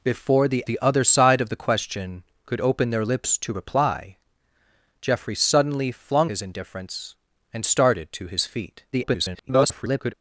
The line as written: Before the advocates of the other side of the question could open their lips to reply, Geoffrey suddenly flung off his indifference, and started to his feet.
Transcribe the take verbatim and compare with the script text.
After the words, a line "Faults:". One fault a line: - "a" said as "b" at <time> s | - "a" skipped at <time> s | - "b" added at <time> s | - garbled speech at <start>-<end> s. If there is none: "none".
Before the the other side of the question could open their lips to reply, Geoffrey suddenly flung his indifference, and started to his feet. [garbled]
Faults:
- "advocates of" skipped at 0.6 s
- "off" skipped at 6.3 s
- garbled speech at 8.9-10.1 s